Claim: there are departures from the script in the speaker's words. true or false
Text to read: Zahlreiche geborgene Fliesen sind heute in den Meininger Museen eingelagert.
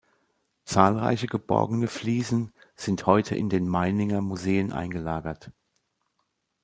false